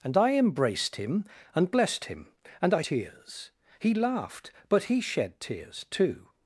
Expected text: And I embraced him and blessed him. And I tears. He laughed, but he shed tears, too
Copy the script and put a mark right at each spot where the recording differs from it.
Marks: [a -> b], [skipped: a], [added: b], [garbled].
And I embraced him and blessed him. And I tears. He laughed, but he shed tears, too